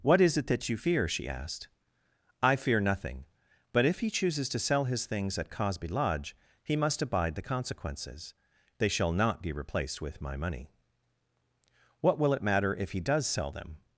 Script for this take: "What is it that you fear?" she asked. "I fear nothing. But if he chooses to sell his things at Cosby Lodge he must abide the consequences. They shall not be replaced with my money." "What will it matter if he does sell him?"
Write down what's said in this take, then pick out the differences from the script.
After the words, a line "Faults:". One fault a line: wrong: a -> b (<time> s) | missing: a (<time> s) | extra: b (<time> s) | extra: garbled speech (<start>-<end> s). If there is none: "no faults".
"What is it that you fear?" she asked. "I fear nothing. But if he chooses to sell his things at Cosby Lodge he must abide the consequences. They shall not be replaced with my money." "What will it matter if he does sell them?"
Faults:
wrong: him -> them (13.5 s)